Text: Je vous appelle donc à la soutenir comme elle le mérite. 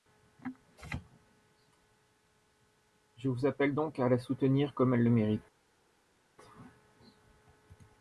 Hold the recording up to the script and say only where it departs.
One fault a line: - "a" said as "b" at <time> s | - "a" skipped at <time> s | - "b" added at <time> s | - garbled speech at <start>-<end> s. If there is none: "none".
none